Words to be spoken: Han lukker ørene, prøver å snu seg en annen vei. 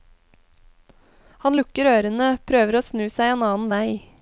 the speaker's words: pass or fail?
pass